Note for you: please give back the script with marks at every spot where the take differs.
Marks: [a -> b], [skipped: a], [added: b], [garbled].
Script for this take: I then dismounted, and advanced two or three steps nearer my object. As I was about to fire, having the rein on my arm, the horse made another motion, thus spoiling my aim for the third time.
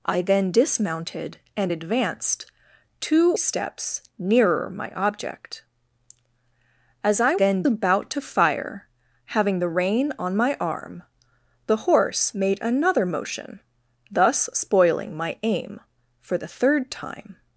I then dismounted, and advanced two [skipped: or three] steps nearer my object. As I [was -> then] about to fire, having the rein on my arm, the horse made another motion, thus spoiling my aim for the third time.